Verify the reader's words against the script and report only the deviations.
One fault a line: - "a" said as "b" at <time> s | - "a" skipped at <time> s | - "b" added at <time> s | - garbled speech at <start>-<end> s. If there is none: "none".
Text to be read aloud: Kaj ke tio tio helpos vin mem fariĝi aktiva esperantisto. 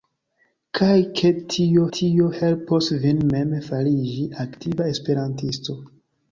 none